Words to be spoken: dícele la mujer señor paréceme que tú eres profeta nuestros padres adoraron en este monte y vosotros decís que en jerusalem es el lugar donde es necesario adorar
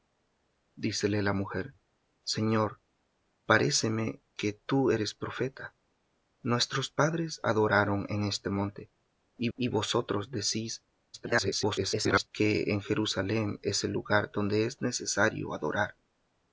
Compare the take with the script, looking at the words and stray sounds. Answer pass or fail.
fail